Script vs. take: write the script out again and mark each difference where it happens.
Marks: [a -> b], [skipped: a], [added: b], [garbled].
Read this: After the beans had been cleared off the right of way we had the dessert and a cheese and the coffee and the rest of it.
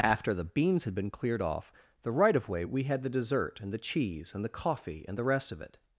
After the beans had been cleared off the right of way we had the dessert and [a -> the] cheese and the coffee and the rest of it.